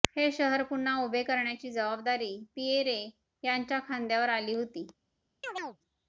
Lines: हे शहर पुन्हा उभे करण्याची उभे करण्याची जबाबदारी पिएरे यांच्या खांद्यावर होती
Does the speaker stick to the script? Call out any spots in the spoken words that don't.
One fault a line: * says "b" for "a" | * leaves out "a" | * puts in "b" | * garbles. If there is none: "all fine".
* leaves out "उभे करण्याची"
* puts in "आली"